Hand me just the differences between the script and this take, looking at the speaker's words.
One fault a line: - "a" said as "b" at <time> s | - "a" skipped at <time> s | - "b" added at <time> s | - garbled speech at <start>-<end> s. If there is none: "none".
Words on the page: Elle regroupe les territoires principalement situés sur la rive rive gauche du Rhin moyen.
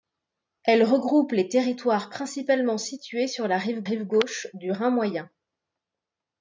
none